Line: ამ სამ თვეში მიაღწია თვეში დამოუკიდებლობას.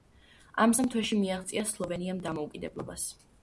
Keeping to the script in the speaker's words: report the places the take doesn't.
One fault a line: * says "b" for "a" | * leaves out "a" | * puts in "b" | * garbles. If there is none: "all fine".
* says "სლოვენიამ" for "თვეში"